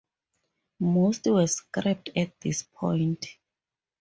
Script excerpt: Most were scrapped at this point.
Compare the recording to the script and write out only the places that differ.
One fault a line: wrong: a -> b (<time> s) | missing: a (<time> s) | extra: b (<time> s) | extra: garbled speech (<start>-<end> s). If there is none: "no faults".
no faults